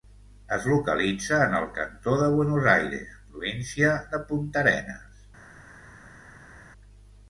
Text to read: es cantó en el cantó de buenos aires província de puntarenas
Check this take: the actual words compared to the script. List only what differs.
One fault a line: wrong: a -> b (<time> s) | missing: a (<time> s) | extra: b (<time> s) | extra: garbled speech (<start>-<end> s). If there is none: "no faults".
wrong: cantó -> localitza (0.7 s)